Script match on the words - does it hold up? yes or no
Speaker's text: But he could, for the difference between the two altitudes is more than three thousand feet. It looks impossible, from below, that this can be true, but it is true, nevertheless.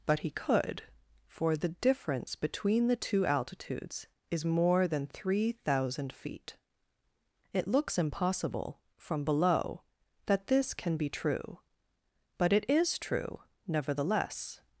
yes